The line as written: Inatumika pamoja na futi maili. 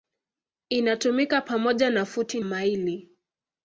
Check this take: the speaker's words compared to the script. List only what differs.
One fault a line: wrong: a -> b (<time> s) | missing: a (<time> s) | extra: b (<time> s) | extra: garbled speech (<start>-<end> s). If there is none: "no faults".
no faults